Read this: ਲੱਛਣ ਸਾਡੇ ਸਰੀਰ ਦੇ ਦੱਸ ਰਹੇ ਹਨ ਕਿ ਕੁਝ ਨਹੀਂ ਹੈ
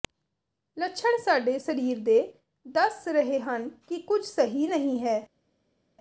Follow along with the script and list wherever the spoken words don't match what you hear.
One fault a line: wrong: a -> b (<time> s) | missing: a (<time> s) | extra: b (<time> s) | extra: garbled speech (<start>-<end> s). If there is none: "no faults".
extra: ਸਹੀ (4.2 s)